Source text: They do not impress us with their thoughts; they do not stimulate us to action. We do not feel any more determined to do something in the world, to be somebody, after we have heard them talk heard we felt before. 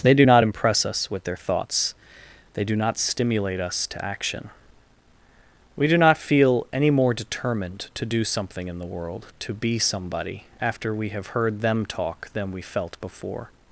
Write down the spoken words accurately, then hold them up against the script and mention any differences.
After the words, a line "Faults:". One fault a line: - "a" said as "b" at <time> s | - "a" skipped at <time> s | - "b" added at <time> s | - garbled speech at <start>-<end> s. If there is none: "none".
They do not impress us with their thoughts; they do not stimulate us to action. We do not feel any more determined to do something in the world, to be somebody, after we have heard them talk than we felt before.
Faults:
- "heard" said as "than" at 12.3 s